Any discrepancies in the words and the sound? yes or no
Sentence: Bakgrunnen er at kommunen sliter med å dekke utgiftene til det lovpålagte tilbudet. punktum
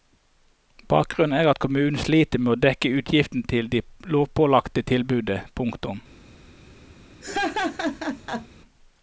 yes